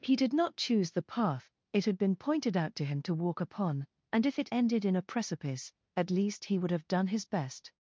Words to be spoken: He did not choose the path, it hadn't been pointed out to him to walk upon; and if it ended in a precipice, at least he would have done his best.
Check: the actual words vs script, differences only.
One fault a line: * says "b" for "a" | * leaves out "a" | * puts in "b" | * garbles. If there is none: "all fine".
* says "had" for "hadn't"